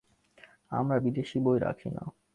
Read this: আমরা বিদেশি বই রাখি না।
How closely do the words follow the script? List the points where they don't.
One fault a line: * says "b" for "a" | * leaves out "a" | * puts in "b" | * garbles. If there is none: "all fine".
all fine